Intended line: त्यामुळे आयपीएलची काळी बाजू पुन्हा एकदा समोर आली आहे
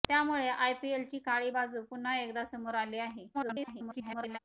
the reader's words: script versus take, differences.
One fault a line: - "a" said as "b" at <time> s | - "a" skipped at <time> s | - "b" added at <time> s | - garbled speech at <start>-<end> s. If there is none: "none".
- garbled speech at 3.3-4.4 s